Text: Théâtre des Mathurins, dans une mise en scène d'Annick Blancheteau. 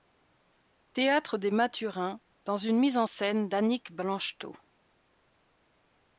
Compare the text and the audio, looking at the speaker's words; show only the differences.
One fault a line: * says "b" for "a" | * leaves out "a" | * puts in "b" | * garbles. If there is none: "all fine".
all fine